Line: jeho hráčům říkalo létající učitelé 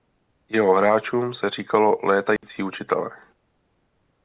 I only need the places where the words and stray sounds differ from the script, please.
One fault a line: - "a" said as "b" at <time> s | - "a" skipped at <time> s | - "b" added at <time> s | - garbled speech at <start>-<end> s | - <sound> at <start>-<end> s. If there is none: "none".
- "se" added at 1.3 s
- dropout at 2.4-2.4 s